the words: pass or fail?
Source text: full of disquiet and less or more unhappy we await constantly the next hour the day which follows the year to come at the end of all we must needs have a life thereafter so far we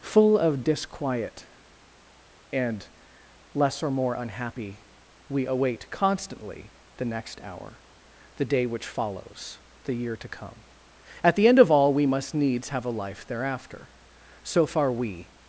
pass